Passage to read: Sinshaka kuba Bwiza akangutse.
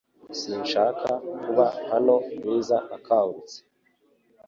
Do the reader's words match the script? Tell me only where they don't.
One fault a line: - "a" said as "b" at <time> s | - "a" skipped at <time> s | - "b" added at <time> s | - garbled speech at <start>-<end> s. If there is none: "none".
- "hano" added at 1.9 s